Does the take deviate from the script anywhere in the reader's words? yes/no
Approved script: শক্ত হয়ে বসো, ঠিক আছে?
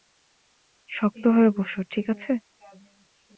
no